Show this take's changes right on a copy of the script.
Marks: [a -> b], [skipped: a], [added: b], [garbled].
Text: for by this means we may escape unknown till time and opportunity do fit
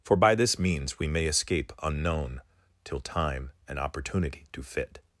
for by this means we may escape unknown till time and opportunity do fit